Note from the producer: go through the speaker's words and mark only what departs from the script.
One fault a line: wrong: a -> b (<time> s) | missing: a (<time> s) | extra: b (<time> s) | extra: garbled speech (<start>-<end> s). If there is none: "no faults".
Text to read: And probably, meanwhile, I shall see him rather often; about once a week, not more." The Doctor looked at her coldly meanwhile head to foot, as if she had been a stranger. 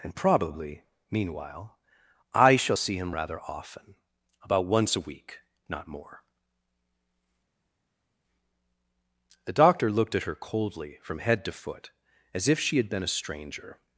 wrong: meanwhile -> from (11.0 s)